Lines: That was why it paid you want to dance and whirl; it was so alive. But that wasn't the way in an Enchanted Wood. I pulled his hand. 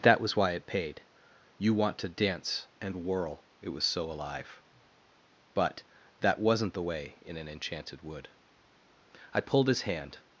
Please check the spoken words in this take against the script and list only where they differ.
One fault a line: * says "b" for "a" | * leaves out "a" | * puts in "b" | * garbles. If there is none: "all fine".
all fine